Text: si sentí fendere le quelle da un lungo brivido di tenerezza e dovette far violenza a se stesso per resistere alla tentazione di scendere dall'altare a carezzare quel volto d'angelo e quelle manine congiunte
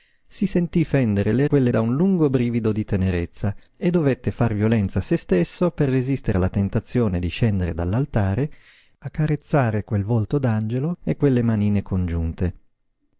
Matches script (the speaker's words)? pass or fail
pass